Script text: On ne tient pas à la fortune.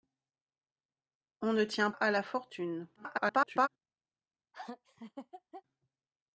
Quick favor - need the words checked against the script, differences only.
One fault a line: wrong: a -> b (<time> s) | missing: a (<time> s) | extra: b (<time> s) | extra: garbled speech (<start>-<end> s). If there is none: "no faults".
missing: pas (1.9 s)
extra: garbled speech (2.9-3.7 s)